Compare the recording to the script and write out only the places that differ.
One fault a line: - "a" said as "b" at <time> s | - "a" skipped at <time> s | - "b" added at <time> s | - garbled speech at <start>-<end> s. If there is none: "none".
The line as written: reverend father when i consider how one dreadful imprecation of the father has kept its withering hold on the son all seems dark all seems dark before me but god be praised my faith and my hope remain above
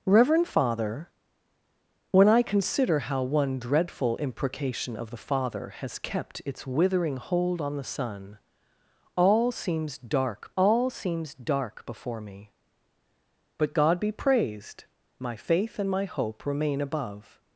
none